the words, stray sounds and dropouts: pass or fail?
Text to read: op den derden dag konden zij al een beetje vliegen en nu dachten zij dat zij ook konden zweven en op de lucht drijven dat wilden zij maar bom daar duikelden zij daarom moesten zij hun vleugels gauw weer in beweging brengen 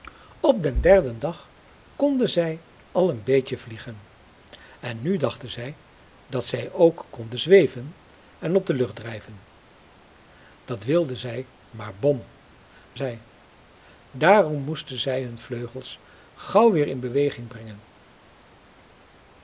fail